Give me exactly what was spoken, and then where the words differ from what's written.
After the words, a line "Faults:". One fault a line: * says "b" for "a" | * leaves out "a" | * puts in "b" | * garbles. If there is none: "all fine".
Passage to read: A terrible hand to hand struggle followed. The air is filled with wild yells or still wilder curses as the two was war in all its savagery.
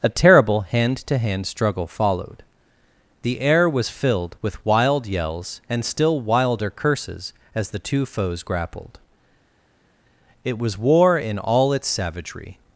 A terrible hand to hand struggle followed. The air was filled with wild yells and still wilder curses as the two foes grappled. It was war in all its savagery.
Faults:
* says "was" for "is"
* says "and" for "or"
* puts in "foes grappled It"